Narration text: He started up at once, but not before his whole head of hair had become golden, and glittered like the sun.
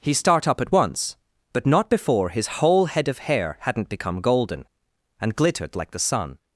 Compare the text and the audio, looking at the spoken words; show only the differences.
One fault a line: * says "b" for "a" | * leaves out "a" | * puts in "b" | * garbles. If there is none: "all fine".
* says "start" for "started"
* says "hadn't" for "had"